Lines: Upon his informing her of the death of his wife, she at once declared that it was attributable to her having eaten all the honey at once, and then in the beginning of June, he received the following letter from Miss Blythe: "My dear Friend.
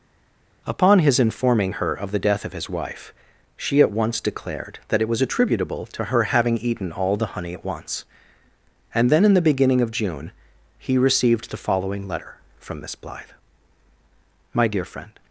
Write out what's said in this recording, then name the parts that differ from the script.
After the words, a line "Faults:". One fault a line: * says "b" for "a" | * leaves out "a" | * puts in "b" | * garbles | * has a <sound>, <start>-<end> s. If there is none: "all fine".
Upon his informing her of the death of his wife, she at once declared that it was attributable to her having eaten all the honey at once, and then in the beginning of June, he received the following letter from Miss Blythe: "My dear Friend.
Faults:
all fine